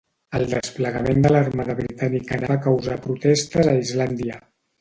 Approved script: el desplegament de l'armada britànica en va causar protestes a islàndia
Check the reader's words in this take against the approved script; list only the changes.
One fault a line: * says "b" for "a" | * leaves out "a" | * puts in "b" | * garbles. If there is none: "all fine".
all fine